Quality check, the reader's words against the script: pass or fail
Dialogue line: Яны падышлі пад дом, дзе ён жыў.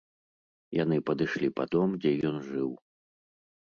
pass